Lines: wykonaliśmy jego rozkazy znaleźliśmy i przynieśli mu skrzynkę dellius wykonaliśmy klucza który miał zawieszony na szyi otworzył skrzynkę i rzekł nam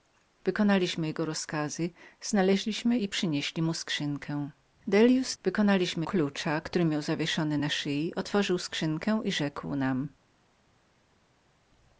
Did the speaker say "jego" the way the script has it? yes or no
yes